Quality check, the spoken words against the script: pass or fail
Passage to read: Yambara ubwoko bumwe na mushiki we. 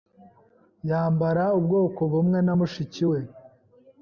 pass